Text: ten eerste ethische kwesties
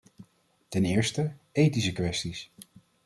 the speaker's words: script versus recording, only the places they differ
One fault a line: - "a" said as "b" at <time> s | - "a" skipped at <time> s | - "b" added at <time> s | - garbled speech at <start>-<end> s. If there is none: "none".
none